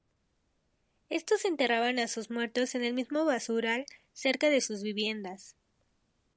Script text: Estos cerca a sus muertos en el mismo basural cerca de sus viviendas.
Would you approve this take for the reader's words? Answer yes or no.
no